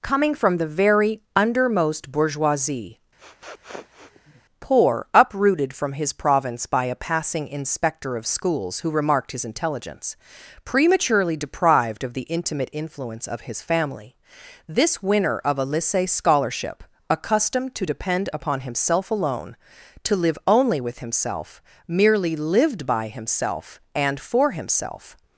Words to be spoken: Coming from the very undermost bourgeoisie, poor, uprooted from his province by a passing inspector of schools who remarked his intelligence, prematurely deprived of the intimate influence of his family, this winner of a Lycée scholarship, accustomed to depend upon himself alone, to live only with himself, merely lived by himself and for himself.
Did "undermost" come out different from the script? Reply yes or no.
no